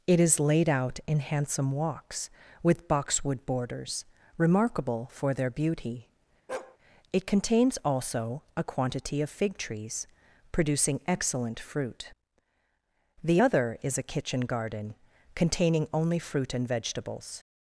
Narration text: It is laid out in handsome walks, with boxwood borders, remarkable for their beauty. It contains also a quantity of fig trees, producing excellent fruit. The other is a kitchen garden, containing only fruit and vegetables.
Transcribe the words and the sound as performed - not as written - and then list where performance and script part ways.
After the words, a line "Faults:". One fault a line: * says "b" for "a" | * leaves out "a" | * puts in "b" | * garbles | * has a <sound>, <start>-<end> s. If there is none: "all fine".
It is laid out in handsome walks, with boxwood borders, remarkable for their beauty. It contains also a quantity of fig trees, producing excellent fruit. The other is a kitchen garden, containing only fruit and vegetables.
Faults:
* has a bark, 6.5-6.8 s